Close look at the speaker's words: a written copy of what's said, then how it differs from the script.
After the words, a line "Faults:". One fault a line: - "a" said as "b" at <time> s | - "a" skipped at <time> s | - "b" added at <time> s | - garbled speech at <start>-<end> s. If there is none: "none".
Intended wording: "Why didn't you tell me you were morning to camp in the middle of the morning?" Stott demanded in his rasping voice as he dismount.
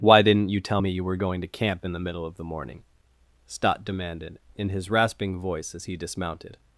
"Why didn't you tell me you were going to camp in the middle of the morning?" Stott demanded in his rasping voice as he dismounted.
Faults:
- "morning" said as "going" at 1.2 s
- "dismount" said as "dismounted" at 6.0 s